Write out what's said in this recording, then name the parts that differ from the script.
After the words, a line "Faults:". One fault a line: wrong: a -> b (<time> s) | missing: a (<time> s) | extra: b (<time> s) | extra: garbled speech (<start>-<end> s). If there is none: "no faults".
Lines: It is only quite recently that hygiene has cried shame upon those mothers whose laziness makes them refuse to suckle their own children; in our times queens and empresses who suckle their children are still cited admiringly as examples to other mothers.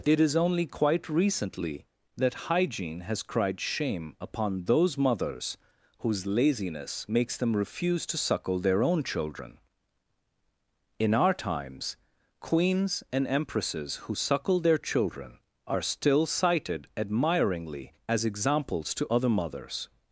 It is only quite recently that hygiene has cried shame upon those mothers whose laziness makes them refuse to suckle their own children; in our times queens and empresses who suckle their children are still cited admiringly as examples to other mothers.
Faults:
no faults